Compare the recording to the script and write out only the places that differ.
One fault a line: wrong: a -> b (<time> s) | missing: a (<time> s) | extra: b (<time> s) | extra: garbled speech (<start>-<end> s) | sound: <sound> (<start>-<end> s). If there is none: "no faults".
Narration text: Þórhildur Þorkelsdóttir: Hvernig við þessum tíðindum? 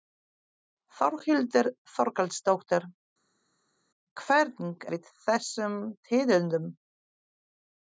no faults